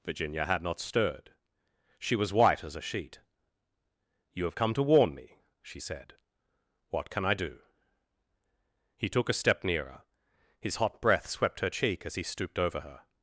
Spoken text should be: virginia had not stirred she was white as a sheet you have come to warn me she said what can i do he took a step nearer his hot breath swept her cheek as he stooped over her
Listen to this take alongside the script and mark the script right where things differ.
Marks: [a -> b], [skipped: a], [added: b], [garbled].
virginia had not stirred she was white as a sheet you have come to warn me she said what can i do he took a step nearer his hot breath swept her cheek as he stooped over her